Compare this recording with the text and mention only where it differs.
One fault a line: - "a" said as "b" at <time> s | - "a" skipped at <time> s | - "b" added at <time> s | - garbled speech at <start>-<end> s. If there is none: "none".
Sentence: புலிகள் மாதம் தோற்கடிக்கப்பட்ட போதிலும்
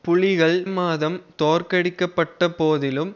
none